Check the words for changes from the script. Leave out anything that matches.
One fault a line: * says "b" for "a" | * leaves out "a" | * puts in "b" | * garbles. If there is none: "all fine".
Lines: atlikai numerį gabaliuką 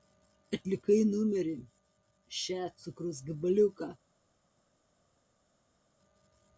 * puts in "še cukraus"